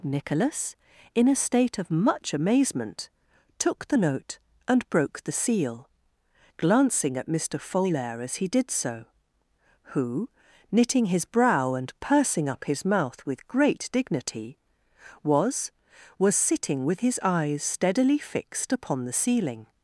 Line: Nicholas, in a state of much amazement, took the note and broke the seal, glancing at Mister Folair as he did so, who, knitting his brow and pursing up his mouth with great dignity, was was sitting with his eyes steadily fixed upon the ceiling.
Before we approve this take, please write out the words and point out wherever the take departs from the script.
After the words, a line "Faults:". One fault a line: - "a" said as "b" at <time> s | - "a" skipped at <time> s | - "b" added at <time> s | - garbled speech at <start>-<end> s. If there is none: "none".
Nicholas, in a state of much amazement, took the note and broke the seal, glancing at Mister Folair as he did so, who, knitting his brow and pursing up his mouth with great dignity, was was sitting with his eyes steadily fixed upon the ceiling.
Faults:
none